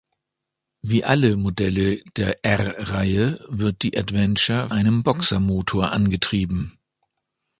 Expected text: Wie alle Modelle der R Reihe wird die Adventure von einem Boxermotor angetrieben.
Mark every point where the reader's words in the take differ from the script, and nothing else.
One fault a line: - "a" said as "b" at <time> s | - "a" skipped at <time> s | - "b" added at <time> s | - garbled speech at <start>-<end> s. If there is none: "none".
- "von" skipped at 4.7 s